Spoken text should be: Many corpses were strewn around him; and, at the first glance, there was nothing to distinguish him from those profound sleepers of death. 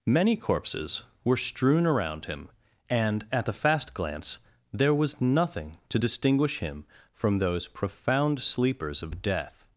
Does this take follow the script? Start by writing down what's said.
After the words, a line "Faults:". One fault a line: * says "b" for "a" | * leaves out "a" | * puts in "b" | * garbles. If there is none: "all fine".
Many corpses were strewn around him; and, at the fast glance, there was nothing to distinguish him from those profound sleepers of death.
Faults:
* says "fast" for "first"